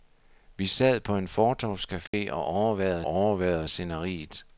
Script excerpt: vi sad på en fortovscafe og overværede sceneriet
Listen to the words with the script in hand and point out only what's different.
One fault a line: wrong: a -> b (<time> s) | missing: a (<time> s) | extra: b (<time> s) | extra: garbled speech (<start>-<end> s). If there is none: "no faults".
extra: overværede (3.0 s)